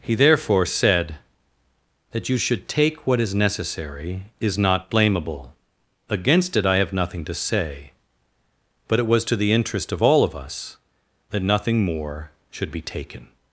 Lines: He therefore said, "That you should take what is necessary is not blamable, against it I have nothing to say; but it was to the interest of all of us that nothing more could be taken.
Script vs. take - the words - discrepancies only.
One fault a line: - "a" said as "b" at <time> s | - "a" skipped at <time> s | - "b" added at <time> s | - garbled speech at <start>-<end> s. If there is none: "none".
- "could" said as "should" at 12.5 s